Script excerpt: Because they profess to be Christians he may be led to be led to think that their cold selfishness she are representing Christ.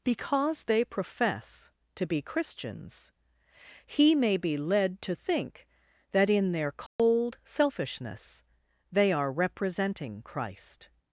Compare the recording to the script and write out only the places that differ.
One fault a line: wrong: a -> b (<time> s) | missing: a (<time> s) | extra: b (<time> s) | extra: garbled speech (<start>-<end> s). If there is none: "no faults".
missing: be led to (5.1 s)
extra: in (6.3 s)
wrong: she -> they (8.9 s)